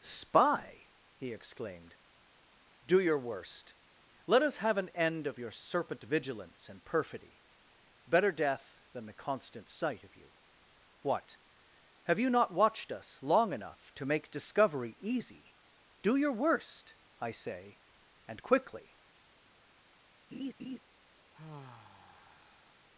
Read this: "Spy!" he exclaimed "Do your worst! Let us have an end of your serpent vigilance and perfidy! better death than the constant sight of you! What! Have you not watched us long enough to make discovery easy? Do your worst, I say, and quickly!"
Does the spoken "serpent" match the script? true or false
true